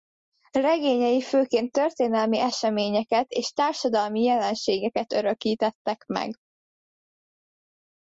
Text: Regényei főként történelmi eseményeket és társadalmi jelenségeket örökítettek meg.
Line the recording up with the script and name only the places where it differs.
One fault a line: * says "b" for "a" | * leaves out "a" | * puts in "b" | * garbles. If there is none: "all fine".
all fine